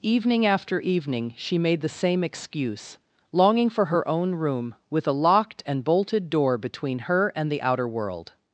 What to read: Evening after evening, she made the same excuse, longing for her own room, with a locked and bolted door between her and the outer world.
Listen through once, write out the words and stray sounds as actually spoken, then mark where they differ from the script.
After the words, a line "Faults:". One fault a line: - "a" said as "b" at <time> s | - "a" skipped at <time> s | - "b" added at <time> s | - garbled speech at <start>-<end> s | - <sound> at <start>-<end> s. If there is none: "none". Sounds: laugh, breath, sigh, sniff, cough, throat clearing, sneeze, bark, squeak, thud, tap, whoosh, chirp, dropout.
Evening after evening, she made the same excuse, longing for her own room, with a locked and bolted door between her and the outer world.
Faults:
none